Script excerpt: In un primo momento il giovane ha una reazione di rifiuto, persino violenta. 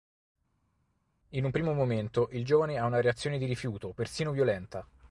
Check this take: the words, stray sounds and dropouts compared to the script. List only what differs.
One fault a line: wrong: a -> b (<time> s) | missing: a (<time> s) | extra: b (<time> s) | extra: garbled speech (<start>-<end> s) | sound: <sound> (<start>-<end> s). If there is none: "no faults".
no faults